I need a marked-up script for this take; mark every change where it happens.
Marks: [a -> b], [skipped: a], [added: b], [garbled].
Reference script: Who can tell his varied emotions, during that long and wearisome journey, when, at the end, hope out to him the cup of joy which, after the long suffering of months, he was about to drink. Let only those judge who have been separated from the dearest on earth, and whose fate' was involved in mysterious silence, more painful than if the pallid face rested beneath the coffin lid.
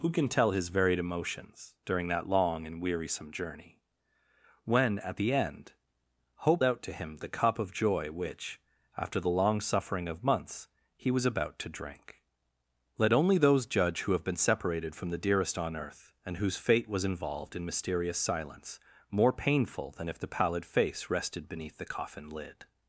Who can tell his varied emotions, during that long and wearisome journey, when, at the end, hope out to him the cup of joy which, after the long suffering of months, he was about to drink. Let only those judge who have been separated from the dearest on earth, and whose fate' was involved in mysterious silence, more painful than if the pallid face rested beneath the coffin lid.